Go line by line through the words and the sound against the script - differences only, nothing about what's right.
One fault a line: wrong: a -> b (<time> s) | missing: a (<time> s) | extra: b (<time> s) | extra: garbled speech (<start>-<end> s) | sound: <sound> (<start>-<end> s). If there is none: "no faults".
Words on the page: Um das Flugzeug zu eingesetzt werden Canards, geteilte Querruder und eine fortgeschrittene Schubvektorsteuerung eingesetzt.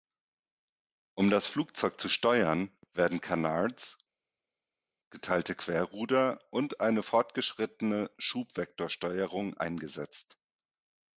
wrong: eingesetzt -> steuern (2.1 s)